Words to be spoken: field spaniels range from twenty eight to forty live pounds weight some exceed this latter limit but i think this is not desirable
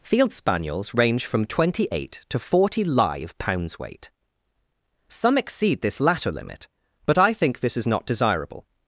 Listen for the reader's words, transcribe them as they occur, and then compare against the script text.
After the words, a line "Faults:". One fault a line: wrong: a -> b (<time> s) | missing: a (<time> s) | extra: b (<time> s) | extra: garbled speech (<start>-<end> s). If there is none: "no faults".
field spaniels range from twenty eight to forty live pounds weight some exceed this latter limit but i think this is not desirable
Faults:
no faults